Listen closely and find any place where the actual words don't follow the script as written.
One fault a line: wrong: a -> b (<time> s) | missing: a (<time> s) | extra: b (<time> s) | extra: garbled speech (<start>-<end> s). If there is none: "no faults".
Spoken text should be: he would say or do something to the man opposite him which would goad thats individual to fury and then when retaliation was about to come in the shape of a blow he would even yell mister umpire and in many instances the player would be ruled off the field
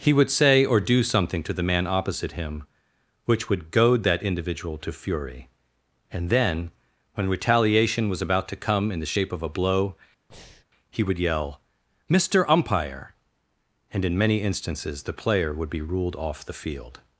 wrong: thats -> that (4.0 s)
missing: even (11.2 s)